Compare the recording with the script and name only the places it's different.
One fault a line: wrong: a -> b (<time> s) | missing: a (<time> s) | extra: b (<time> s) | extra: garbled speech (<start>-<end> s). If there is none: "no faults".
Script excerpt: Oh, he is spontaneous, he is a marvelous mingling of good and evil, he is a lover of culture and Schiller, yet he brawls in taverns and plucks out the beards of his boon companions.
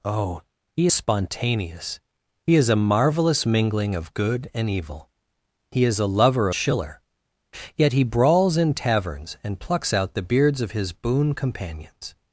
missing: is (0.9 s)
missing: of culture and (6.5 s)